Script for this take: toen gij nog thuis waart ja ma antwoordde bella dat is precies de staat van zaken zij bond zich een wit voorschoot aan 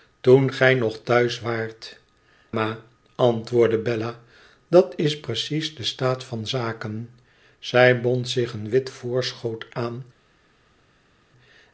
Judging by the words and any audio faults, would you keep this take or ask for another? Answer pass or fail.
fail